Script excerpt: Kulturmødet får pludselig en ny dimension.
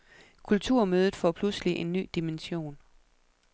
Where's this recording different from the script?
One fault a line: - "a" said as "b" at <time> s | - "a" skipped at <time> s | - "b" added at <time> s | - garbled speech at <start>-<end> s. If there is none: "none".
none